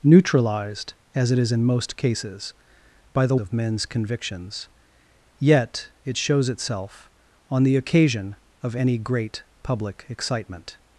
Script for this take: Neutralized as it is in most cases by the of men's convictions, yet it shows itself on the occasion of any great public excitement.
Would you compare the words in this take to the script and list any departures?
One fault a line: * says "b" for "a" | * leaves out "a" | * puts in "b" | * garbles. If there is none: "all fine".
all fine